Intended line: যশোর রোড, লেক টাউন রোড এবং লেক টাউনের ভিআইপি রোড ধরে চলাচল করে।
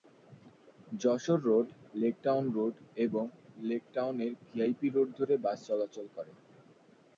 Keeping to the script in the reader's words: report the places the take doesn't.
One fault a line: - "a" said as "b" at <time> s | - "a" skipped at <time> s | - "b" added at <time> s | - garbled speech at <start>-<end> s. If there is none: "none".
- "বাস" added at 5.4 s